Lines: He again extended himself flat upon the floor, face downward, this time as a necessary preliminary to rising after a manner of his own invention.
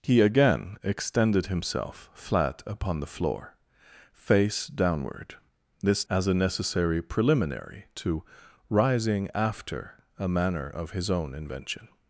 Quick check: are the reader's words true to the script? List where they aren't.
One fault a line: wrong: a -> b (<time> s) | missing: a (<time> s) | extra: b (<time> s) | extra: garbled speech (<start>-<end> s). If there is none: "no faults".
missing: time (6.0 s)